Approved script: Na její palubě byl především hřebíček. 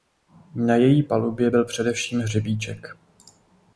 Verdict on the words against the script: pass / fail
pass